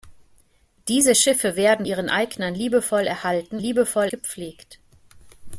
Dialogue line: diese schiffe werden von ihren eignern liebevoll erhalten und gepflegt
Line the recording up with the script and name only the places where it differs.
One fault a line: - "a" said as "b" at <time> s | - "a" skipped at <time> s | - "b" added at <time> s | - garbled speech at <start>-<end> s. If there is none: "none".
- "von" skipped at 1.9 s
- "und" said as "liebevoll" at 3.6 s